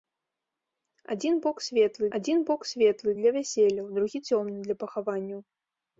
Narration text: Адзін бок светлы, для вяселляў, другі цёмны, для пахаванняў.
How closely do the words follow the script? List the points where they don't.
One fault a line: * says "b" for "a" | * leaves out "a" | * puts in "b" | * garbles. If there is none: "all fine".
* puts in "адзін бок светлы"